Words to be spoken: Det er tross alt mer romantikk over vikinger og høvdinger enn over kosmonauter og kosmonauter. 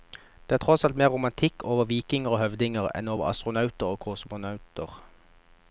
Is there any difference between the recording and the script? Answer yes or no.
yes